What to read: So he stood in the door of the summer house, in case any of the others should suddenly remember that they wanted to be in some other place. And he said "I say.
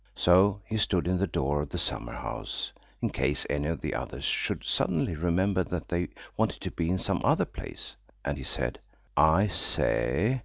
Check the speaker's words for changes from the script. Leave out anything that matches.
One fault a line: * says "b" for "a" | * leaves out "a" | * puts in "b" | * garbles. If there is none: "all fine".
all fine